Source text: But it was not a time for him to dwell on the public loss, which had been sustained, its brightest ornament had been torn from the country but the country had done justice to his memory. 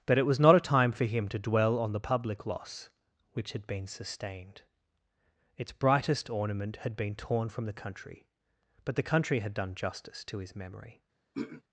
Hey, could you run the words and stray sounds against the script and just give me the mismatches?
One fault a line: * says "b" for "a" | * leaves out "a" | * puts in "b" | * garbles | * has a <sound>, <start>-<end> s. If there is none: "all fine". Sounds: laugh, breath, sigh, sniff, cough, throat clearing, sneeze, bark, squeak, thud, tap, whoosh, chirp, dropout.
* has a throat clearing, 11.3-11.6 s